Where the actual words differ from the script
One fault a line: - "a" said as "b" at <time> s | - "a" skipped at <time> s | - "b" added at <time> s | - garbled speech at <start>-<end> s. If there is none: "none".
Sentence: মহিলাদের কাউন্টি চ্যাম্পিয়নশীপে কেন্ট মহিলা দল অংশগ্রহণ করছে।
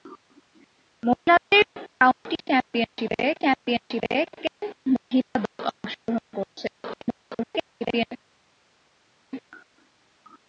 - "চ্যাম্পিয়নশীপে" added at 3.4 s
- garbled speech at 6.8-8.1 s